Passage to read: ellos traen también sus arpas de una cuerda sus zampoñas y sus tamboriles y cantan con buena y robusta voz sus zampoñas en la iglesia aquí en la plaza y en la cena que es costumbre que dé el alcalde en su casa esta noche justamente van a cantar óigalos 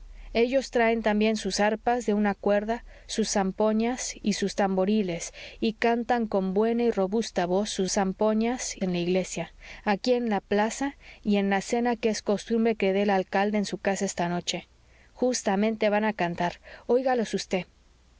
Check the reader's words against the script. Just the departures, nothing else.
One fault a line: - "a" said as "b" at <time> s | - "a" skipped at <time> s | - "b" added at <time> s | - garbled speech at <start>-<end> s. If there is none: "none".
none